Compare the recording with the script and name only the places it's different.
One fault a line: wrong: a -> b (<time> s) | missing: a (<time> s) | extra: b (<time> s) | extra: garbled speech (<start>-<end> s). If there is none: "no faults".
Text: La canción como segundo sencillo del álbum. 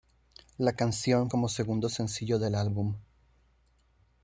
no faults